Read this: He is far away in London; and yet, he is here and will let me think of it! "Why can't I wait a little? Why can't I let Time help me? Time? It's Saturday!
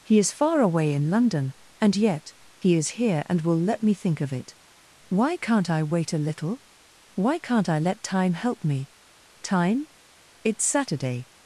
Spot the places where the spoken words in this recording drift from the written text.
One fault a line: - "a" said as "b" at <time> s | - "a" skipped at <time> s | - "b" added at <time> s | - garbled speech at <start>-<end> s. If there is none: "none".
none